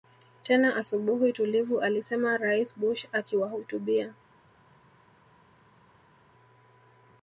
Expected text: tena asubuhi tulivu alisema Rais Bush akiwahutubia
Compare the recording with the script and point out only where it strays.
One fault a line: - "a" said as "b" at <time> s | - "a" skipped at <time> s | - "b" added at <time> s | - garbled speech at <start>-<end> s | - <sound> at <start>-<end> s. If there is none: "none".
none